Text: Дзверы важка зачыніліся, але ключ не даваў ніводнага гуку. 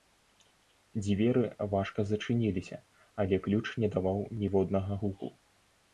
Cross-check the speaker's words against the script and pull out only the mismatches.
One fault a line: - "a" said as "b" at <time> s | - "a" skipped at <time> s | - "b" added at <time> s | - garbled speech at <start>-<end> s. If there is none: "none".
none